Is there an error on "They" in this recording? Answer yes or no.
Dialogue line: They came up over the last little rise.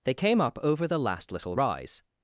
no